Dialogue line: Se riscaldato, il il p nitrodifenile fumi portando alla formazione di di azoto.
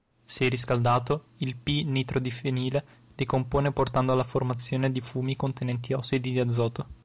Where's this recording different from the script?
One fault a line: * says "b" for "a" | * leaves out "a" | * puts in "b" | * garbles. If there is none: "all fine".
* leaves out "il"
* says "decompone" for "fumi"
* puts in "fumi contenenti ossidi"